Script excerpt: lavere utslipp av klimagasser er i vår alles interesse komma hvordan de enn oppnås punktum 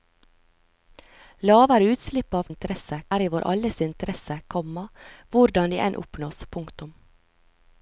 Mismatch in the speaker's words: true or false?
true